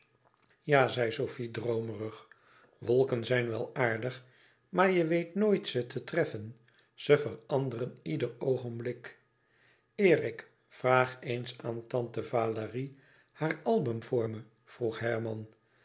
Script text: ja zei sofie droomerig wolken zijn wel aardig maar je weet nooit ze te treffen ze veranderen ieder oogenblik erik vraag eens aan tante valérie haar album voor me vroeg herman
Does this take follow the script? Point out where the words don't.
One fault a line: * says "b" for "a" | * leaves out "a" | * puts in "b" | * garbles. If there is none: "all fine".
all fine